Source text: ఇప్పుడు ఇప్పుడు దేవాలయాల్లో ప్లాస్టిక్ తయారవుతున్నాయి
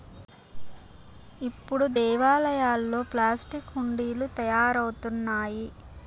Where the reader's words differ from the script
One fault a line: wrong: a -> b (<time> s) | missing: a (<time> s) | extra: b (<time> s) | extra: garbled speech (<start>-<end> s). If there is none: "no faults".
missing: ఇప్పుడు (1.9 s)
extra: హుండీలు (3.7 s)